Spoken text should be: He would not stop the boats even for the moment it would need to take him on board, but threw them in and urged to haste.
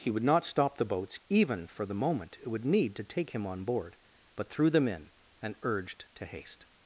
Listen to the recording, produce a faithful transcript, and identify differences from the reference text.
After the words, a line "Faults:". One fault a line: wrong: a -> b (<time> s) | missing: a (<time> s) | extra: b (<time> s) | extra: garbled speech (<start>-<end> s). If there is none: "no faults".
He would not stop the boats even for the moment it would need to take him on board, but threw them in and urged to haste.
Faults:
no faults